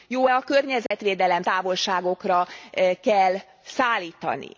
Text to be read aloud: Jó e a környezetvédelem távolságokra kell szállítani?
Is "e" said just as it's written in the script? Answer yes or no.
yes